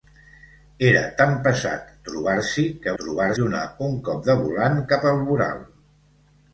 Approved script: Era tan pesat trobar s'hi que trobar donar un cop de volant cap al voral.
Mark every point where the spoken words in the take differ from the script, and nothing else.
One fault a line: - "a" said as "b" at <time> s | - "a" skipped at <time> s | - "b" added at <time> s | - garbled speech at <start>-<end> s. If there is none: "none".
none